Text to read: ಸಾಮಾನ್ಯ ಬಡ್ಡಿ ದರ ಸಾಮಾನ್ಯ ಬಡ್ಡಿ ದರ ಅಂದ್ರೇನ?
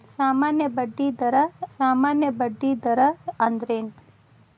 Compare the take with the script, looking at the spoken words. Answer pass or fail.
pass